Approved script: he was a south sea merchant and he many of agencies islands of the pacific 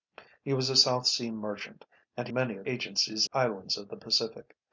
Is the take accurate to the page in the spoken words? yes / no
yes